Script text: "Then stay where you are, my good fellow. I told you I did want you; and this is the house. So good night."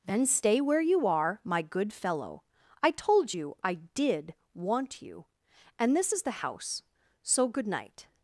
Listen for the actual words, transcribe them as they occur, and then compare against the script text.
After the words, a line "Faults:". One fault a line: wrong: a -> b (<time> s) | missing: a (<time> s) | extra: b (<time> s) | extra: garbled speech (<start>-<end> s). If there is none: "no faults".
"Then stay where you are, my good fellow. I told you I did want you; and this is the house. So good night."
Faults:
no faults